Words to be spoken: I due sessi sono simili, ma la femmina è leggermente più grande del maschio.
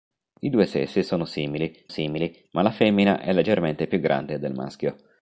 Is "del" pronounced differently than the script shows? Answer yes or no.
no